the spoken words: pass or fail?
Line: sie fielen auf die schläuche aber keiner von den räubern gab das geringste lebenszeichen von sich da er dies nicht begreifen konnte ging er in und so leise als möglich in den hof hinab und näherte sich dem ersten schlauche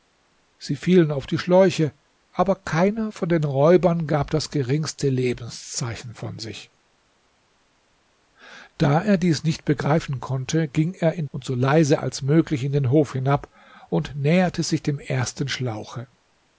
pass